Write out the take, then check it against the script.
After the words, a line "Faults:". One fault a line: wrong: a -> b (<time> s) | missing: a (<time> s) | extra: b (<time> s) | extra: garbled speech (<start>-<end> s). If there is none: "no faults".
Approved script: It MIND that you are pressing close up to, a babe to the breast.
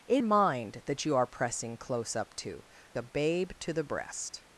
It MIND that you are pressing close up to, a babe to the breast.
Faults:
no faults